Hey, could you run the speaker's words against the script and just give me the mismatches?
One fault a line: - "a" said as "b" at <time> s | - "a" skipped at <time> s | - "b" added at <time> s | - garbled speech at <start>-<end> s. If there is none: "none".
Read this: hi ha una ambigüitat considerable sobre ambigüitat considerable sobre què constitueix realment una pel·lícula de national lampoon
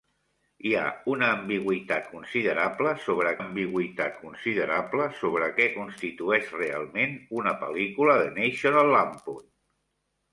none